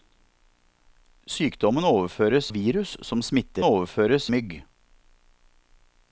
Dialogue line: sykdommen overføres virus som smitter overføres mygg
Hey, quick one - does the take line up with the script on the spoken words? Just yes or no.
yes